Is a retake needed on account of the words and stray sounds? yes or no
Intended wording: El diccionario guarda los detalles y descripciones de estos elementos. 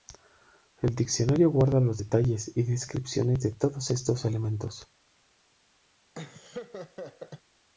yes